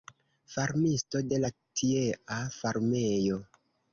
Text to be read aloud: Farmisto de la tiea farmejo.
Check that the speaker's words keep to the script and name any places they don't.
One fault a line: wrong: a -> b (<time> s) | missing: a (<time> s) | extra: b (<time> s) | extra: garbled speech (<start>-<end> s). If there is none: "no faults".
no faults